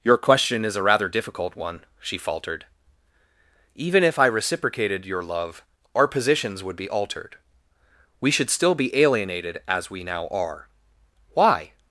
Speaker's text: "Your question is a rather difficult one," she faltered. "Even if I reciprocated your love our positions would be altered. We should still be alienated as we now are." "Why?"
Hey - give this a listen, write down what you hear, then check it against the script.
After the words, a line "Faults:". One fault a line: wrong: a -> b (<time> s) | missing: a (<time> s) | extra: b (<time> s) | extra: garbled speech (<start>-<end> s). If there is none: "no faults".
"Your question is a rather difficult one," she faltered. "Even if I reciprocated your love our positions would be altered. We should still be alienated as we now are." "Why?"
Faults:
no faults